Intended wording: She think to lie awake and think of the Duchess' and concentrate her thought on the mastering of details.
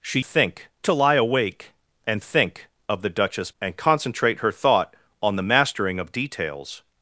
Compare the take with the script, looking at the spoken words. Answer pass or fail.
pass